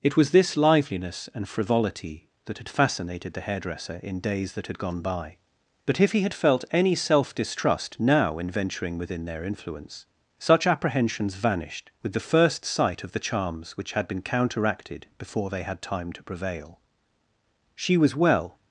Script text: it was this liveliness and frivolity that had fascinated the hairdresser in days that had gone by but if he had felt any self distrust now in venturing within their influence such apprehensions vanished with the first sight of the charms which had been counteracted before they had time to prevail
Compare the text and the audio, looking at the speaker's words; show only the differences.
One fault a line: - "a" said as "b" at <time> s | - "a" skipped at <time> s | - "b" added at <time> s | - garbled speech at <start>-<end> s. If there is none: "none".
- "she was well" added at 17.8 s